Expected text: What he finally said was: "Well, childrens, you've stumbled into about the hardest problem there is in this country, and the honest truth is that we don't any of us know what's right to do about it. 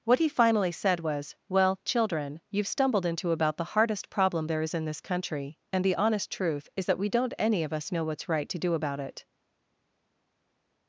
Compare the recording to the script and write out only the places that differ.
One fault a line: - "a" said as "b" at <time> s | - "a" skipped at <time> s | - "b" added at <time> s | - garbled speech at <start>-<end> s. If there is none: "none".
- "childrens" said as "children" at 1.9 s